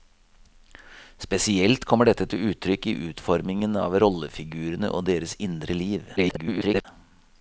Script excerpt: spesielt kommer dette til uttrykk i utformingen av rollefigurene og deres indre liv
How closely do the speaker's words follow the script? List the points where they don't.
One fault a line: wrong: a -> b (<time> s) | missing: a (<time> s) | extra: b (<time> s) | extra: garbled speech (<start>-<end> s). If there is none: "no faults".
extra: garbled speech (6.2-6.9 s)